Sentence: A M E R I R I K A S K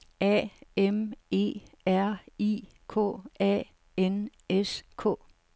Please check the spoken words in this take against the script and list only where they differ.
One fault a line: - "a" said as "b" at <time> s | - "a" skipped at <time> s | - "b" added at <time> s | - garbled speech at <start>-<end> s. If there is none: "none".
- "R I" skipped at 2.6 s
- "N" added at 4.0 s